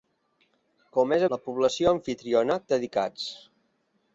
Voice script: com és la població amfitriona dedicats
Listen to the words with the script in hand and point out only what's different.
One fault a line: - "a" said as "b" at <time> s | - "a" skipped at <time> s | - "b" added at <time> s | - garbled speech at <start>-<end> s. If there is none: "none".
none